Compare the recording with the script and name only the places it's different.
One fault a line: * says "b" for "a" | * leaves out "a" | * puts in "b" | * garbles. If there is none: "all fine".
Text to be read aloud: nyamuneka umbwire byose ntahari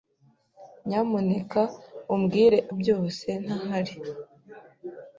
all fine